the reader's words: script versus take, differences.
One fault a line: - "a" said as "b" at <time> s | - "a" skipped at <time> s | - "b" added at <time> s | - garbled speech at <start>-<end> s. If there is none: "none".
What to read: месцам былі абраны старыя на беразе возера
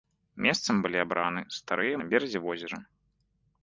none